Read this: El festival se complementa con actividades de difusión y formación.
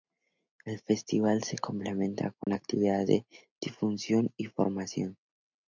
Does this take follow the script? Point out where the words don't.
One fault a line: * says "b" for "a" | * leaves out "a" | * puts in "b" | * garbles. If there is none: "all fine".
all fine